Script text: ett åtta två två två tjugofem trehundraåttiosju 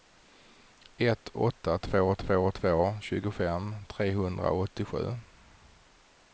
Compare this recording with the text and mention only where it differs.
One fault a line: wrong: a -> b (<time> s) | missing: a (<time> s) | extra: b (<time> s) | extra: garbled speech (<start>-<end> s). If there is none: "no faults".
no faults